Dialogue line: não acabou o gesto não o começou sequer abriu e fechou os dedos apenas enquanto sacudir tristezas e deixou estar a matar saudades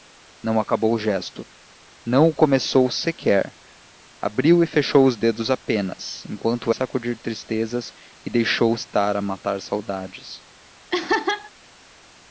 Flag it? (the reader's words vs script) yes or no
no